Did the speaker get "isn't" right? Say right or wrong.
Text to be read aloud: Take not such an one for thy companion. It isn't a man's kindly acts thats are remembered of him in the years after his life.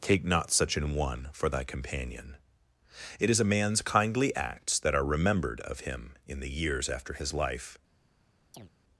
wrong